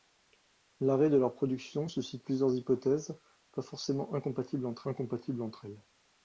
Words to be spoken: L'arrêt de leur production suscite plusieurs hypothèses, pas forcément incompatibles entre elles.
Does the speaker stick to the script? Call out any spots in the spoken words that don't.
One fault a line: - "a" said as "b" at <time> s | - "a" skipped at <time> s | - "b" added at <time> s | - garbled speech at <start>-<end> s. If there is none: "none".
- "incompatibles entre" added at 4.9 s